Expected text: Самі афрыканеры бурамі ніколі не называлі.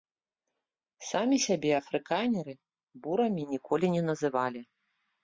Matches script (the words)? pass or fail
fail